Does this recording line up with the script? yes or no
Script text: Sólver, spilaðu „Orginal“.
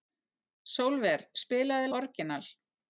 yes